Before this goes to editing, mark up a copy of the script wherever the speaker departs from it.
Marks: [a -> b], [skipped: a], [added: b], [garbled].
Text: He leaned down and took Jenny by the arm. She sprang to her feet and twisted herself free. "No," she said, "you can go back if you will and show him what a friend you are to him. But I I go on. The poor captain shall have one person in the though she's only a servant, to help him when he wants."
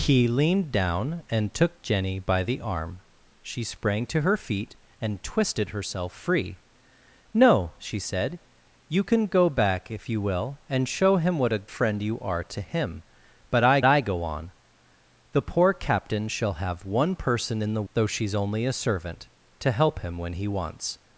He leaned down and took Jenny by the arm. She sprang to her feet and twisted herself free. "No," she said, "you can go back if you will and show him what a friend you are to him. But I I go on. The poor captain shall have one person in the though she's only a servant, to help him when he wants."